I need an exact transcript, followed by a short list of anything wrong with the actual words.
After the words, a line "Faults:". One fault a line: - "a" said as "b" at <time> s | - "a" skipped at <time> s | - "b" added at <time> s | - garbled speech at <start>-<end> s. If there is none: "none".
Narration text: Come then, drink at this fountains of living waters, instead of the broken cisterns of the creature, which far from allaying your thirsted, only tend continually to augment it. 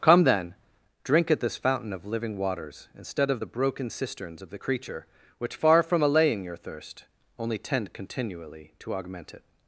Come then, drink at this fountain of living waters, instead of the broken cisterns of the creature, which far from allaying your thirst, only tend continually to augment it.
Faults:
- "fountains" said as "fountain" at 1.6 s
- "thirsted" said as "thirst" at 6.6 s